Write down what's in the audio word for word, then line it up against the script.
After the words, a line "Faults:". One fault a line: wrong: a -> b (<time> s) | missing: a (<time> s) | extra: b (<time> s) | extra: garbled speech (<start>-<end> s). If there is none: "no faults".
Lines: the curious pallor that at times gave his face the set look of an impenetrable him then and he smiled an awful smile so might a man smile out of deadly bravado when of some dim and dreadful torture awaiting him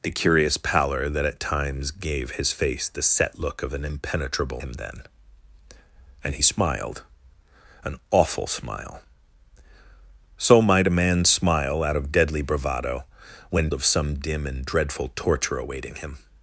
the curious pallor that at times gave his face the set look of an impenetrable him then and he smiled an awful smile so might a man smile out of deadly bravado when of some dim and dreadful torture awaiting him
Faults:
no faults